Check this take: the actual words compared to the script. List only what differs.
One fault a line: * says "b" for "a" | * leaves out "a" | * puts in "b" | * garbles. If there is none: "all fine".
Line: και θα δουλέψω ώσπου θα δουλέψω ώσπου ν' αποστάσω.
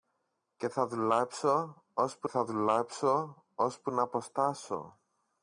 all fine